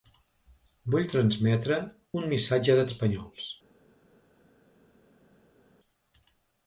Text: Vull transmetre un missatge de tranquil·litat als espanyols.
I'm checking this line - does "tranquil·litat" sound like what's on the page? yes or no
no